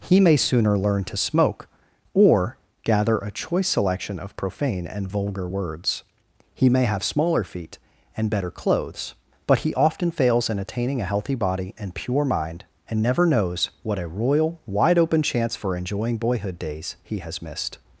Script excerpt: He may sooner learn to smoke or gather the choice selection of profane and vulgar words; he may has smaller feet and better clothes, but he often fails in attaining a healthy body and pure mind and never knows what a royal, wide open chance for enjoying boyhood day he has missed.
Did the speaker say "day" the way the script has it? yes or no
no